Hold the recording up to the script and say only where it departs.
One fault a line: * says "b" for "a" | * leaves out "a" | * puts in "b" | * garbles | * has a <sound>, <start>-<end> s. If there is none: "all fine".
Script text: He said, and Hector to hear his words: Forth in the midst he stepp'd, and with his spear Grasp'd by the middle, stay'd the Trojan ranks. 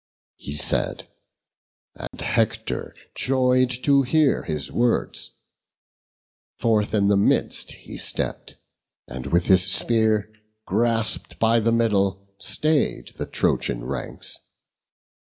* has a dropout, 2.1-2.1 s
* puts in "joy'd"